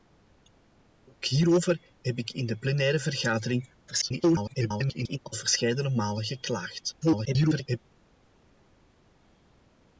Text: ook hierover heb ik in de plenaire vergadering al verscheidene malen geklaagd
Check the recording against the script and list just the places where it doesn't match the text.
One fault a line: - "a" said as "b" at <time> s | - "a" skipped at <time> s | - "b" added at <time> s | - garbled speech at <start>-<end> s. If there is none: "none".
- garbled speech at 3.9-5.2 s
- garbled speech at 7.0-7.8 s